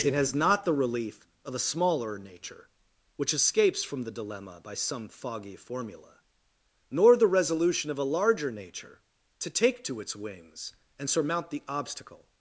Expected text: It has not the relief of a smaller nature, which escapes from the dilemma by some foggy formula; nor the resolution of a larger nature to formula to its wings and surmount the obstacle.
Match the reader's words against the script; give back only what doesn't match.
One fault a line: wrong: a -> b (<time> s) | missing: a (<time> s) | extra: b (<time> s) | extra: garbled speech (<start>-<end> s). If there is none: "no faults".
wrong: formula -> take (9.5 s)